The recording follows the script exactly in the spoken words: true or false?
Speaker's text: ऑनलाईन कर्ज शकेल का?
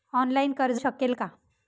true